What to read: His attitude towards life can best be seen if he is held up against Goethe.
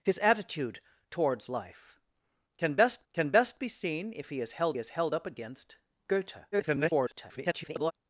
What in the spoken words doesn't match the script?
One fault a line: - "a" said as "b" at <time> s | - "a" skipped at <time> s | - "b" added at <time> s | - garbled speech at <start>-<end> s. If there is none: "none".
- "can best" added at 3.1 s
- "is held" added at 4.8 s
- garbled speech at 6.5-7.9 s